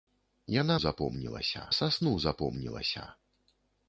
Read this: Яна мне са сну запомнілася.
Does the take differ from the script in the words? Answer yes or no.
yes